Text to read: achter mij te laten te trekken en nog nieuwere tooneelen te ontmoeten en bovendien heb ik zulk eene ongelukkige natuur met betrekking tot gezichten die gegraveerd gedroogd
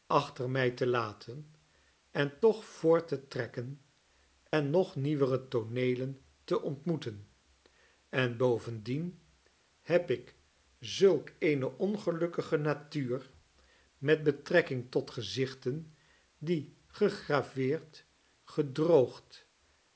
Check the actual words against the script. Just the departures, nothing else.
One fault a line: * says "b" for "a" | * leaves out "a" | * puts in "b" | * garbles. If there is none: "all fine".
* puts in "en toch voort"